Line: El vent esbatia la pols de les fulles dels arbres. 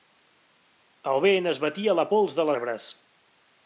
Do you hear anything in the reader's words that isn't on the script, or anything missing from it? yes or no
yes